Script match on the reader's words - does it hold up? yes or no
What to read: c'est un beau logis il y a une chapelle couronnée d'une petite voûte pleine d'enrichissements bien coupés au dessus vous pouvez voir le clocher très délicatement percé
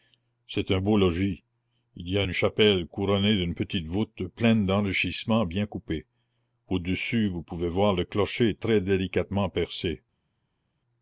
yes